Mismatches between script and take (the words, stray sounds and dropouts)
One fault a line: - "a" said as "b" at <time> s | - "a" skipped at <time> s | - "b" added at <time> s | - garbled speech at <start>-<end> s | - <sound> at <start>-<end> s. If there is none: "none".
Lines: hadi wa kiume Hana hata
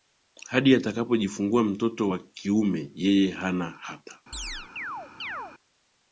- "atakapojifungua mtoto" added at 0.8 s
- "Yeye" added at 3.0 s
- chirp at 4.3-5.5 s